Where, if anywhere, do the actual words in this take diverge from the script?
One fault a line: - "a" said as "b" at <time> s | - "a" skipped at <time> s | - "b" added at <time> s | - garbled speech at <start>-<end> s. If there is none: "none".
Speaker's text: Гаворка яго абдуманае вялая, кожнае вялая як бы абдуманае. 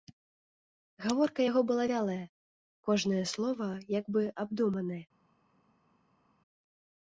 - "абдуманае" said as "была" at 1.7 s
- "вялая" said as "слова" at 3.3 s